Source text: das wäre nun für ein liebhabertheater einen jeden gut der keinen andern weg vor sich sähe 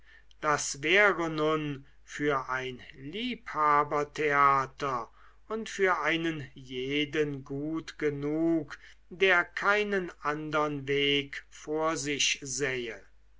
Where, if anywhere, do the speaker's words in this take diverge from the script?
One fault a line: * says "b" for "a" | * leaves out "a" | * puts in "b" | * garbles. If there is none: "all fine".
* puts in "und für"
* puts in "genug"